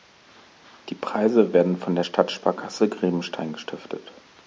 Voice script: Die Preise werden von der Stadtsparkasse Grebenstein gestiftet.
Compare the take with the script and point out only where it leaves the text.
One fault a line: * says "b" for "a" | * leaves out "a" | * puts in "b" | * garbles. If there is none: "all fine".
all fine